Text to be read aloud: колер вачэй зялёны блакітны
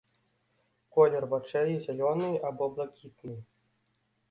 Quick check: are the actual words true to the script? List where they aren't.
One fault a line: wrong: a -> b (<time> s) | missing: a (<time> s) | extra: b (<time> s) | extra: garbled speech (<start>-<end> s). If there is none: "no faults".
extra: або (2.5 s)